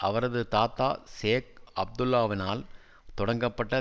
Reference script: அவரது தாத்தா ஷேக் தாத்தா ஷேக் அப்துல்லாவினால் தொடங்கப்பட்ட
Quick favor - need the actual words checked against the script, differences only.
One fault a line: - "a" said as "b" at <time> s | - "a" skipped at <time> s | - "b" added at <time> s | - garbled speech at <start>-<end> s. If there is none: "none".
- "தாத்தா ஷேக்" skipped at 1.5 s